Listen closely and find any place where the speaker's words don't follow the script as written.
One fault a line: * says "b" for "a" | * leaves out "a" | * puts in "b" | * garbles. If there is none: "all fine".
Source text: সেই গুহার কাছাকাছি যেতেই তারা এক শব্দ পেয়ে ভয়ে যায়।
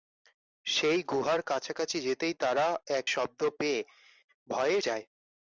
all fine